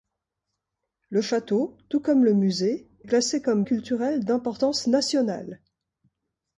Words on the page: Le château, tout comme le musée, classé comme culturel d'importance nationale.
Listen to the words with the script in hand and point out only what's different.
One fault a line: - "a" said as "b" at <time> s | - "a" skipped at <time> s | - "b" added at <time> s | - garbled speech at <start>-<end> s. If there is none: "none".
none